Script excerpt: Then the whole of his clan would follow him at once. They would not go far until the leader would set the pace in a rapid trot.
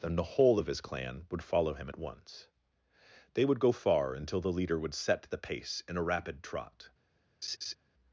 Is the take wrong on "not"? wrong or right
wrong